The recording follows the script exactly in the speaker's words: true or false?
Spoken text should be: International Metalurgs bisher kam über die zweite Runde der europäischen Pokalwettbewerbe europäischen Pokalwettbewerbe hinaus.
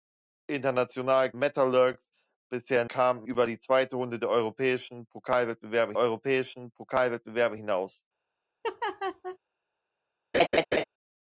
true